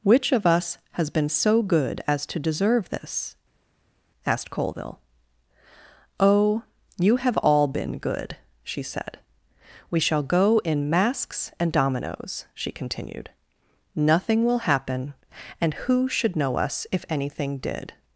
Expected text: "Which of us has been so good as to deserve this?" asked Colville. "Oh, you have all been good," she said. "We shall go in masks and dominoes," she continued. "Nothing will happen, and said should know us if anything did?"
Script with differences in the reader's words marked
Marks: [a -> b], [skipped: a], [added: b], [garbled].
"Which of us has been so good as to deserve this?" asked Colville. "Oh, you have all been good," she said. "We shall go in masks and dominoes," she continued. "Nothing will happen, and [said -> who] should know us if anything did?"